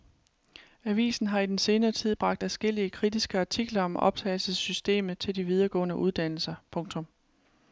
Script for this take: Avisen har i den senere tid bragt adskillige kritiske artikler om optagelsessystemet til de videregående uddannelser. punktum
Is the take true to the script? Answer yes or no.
yes